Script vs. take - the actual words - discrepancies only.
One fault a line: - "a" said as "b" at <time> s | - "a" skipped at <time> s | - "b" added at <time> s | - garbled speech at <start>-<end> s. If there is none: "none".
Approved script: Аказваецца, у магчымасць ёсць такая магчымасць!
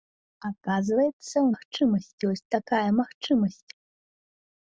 none